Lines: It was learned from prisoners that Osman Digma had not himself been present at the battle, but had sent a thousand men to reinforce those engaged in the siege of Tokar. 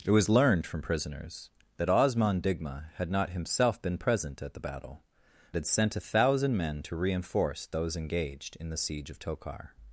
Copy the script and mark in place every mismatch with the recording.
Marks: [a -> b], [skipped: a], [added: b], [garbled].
It was learned from prisoners that Osman Digma had not himself been present at the battle, [skipped: but] had sent a thousand men to reinforce those engaged in the siege of Tokar.